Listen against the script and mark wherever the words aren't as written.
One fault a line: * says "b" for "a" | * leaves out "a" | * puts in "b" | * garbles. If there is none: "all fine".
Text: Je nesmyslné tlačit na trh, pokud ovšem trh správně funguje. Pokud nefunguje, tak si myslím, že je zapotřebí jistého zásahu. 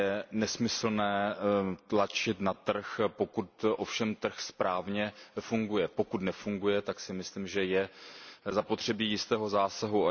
all fine